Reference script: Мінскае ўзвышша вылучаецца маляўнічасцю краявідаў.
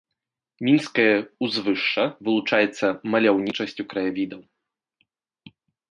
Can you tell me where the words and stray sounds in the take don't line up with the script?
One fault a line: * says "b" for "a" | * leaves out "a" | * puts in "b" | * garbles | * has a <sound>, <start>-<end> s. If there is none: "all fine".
all fine